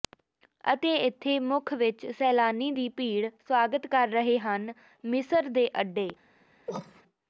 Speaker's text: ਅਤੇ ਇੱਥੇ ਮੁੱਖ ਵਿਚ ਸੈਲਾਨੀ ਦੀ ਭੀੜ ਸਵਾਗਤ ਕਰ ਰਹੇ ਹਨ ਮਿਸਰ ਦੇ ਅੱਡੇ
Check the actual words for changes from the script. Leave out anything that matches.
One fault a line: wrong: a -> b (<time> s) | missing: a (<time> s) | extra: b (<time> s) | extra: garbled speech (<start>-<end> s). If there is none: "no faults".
no faults